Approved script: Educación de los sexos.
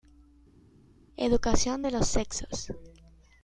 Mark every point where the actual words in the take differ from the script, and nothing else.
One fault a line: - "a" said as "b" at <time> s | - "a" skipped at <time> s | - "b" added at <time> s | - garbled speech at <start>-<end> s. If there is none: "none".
none